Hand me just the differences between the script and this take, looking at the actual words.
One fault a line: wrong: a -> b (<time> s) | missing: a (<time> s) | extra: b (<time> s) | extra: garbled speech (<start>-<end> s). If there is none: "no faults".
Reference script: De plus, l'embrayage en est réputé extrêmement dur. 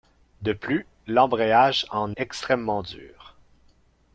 missing: est réputé (2.1 s)